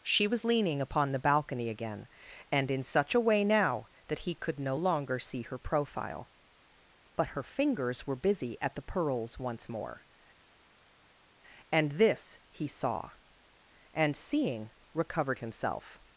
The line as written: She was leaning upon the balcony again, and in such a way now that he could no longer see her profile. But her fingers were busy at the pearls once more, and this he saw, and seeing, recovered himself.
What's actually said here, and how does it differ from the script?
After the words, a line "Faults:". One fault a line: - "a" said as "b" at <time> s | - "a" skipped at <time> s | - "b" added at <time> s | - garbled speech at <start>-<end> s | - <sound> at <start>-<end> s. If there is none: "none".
She was leaning upon the balcony again, and in such a way now that he could no longer see her profile. But her fingers were busy at the pearls once more, and this he saw, and seeing, recovered himself.
Faults:
none